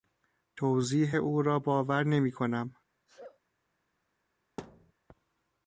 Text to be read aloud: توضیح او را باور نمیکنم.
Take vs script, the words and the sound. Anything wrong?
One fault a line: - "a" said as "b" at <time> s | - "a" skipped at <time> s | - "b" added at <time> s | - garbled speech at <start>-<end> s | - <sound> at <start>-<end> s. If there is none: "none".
- sneeze at 3.1-3.4 s
- thud at 4.6-4.9 s